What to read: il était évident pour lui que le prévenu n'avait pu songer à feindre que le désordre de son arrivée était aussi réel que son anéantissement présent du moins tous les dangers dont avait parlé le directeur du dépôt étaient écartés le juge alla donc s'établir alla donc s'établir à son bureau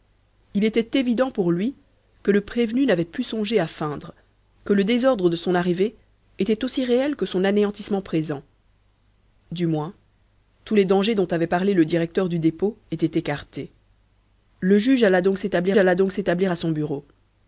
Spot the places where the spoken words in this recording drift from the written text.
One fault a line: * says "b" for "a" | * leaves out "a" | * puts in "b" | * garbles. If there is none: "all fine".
all fine